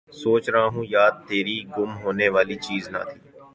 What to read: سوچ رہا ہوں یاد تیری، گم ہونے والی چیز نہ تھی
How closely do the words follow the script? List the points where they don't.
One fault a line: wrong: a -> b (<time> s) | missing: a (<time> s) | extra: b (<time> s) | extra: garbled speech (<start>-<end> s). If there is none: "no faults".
no faults